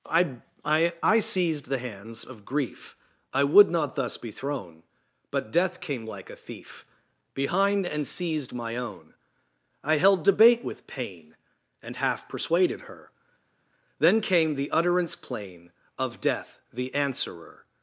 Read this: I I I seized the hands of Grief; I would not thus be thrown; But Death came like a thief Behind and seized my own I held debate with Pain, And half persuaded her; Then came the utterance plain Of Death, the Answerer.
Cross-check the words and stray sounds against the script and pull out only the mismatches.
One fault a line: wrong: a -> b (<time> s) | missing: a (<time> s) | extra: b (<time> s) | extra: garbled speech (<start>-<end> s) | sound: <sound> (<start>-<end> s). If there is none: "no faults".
no faults